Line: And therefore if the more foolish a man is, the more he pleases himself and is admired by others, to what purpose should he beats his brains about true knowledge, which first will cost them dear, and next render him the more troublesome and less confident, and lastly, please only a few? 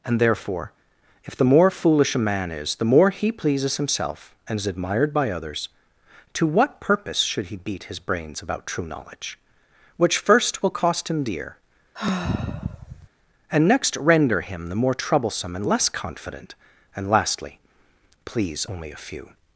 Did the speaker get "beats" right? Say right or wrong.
wrong